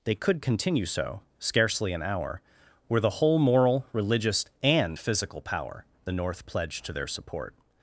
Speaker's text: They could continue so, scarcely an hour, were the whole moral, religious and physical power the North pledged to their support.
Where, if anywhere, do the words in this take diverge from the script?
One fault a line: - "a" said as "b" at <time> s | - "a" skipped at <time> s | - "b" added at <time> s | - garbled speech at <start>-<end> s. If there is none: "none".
none